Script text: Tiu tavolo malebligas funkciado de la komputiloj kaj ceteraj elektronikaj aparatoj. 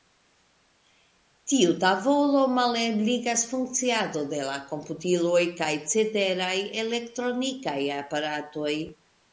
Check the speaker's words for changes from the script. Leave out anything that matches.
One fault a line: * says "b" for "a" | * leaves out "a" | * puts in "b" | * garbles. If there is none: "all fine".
all fine